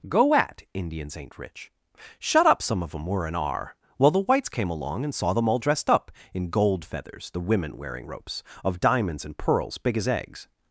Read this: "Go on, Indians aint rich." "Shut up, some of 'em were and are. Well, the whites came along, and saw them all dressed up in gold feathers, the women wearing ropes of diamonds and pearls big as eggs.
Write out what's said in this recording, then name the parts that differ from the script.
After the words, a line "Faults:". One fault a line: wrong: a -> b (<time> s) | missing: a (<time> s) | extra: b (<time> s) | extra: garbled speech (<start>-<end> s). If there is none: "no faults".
"Go at, Indians aint rich." "Shut up, some of 'em were and are. Well, the whites came along, and saw them all dressed up in gold feathers, the women wearing ropes of diamonds and pearls big as eggs.
Faults:
wrong: on -> at (0.3 s)